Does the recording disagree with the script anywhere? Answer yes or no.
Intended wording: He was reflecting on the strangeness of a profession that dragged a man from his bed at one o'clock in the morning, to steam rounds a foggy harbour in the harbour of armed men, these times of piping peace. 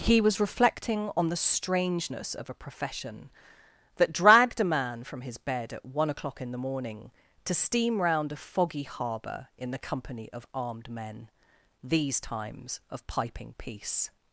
yes